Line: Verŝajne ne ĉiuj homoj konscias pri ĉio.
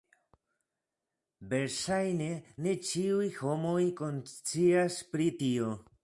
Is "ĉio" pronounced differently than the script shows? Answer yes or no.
yes